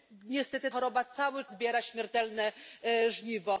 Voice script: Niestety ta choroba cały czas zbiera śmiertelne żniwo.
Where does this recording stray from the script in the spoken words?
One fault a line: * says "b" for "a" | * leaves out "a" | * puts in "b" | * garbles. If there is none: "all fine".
* leaves out "ta"
* leaves out "czas"